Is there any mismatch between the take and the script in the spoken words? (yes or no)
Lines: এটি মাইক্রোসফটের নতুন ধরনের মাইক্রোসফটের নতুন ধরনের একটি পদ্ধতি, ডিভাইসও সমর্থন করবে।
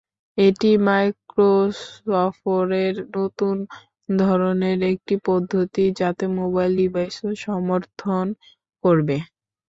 yes